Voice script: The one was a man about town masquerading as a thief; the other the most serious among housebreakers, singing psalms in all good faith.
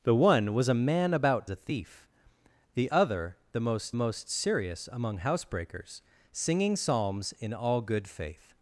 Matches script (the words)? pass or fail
fail